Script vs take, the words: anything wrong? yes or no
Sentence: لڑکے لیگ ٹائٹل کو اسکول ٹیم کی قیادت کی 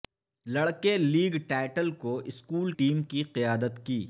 no